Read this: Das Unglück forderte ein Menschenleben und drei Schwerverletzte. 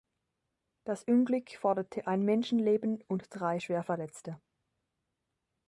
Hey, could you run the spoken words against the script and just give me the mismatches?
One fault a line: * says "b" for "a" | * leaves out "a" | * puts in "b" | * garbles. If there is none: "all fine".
all fine